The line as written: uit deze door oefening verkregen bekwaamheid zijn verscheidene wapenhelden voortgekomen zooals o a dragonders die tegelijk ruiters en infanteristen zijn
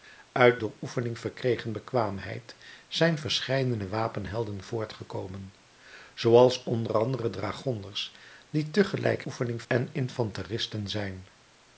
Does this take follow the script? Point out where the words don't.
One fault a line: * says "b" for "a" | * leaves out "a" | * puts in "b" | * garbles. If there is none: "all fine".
* leaves out "deze"
* says "oefening" for "ruiters"